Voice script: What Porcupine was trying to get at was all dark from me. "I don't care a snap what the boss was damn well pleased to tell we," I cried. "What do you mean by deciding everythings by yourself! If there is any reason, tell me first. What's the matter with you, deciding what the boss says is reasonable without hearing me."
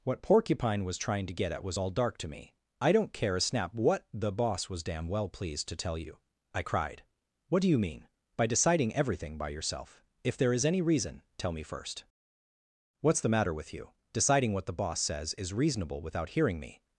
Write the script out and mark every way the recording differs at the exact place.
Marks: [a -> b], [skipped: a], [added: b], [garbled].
What Porcupine was trying to get at was all dark [from -> to] me. "I don't care a snap what the boss was damn well pleased to tell [we," -> you] I cried. "What do you mean by deciding [everythings -> everything] by yourself! If there is any reason, tell me first. What's the matter with you, deciding what the boss says is reasonable without hearing me."